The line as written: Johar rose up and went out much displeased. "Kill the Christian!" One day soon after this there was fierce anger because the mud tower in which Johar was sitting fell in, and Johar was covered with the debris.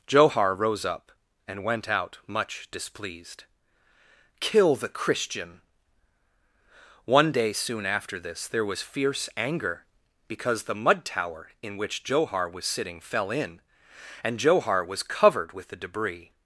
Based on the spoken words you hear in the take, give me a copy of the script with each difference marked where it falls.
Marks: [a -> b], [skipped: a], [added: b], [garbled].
Johar rose up and went out much displeased. "Kill the Christian!" One day soon after this there was fierce anger because the mud tower in which Johar was sitting fell in, and Johar was covered with the debris.